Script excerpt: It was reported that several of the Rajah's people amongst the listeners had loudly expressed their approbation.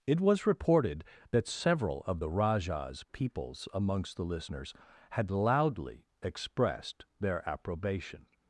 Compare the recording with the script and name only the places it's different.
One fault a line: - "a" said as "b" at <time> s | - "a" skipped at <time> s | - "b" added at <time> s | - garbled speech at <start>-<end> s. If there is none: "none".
- "people" said as "peoples" at 3.1 s